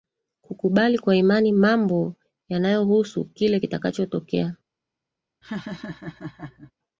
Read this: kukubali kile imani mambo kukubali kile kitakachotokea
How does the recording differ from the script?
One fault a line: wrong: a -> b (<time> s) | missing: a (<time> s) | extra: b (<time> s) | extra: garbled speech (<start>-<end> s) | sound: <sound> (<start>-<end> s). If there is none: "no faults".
wrong: kile -> kwa (1.0 s)
wrong: kukubali -> yanayohusu (2.5 s)
sound: laugh (5.4-6.7 s)